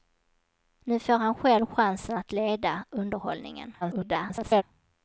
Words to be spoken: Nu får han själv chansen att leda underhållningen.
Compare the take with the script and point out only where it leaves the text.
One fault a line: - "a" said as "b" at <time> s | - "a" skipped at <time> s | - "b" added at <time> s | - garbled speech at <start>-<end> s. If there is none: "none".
- garbled speech at 3.8-4.6 s